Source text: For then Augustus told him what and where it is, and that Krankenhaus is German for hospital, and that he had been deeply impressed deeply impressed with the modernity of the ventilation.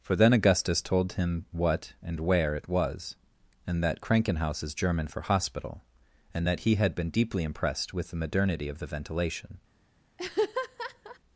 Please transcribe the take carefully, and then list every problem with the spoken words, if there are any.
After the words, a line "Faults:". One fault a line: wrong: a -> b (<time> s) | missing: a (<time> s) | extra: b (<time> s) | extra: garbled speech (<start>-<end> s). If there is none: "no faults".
For then Augustus told him what and where it was, and that Krankenhaus is German for hospital, and that he had been deeply impressed with the modernity of the ventilation.
Faults:
wrong: is -> was (2.7 s)
missing: deeply impressed (7.9 s)